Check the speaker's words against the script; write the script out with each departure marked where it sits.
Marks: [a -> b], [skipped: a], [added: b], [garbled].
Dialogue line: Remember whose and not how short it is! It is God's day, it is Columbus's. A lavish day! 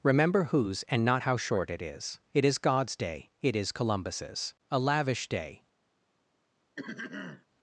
Remember whose and not how short it is! It is God's day, it is Columbus's. A lavish day!